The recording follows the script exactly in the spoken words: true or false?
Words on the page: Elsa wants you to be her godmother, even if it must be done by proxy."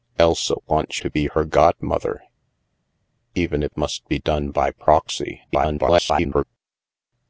false